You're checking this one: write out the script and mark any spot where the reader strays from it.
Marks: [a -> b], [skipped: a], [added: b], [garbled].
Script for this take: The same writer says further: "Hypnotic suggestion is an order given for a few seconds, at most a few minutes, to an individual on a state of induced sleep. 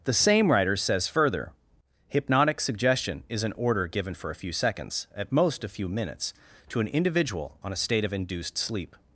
The same writer says further: "Hypnotic suggestion is an order given for a few seconds, at most a few minutes, to an individual on a state of induced sleep.